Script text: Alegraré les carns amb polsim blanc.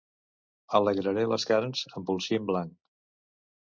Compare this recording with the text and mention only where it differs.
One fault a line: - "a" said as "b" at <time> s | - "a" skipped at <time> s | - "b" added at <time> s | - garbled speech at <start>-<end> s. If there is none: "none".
none